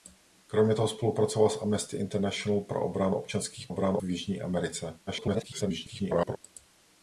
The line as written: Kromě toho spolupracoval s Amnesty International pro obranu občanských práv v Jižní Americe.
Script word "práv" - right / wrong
wrong